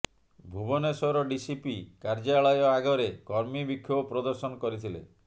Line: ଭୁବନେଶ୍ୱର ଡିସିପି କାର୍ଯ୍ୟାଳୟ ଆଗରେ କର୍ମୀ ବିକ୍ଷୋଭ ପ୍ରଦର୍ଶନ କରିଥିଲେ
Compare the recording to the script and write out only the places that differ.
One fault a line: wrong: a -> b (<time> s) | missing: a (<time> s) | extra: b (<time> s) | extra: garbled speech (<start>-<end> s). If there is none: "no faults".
no faults